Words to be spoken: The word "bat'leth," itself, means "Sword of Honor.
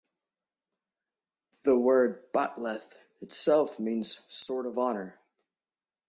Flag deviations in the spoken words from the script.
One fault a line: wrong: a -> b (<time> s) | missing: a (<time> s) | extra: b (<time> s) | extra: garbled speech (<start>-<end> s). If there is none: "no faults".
no faults